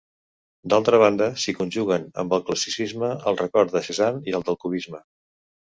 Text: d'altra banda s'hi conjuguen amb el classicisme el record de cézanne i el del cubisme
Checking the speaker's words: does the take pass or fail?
pass